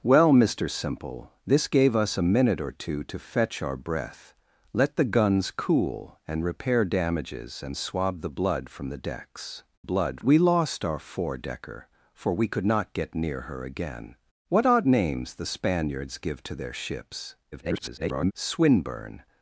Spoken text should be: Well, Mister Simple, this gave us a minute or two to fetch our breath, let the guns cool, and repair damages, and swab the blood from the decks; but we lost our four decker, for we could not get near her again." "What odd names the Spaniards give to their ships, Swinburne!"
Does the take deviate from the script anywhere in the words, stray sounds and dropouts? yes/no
yes